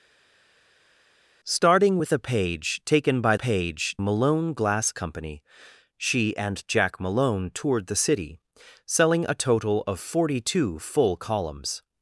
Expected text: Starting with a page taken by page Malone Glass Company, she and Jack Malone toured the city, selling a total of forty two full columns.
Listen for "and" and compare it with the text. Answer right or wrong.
right